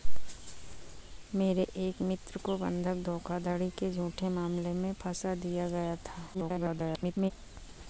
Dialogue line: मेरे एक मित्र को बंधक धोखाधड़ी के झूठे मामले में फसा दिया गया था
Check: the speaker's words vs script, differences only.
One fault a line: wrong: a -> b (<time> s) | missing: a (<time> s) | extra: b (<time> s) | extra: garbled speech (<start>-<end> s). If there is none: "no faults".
extra: garbled speech (6.3-7.3 s)